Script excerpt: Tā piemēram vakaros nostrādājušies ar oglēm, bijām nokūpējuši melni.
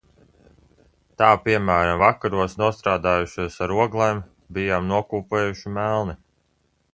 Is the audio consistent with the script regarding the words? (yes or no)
yes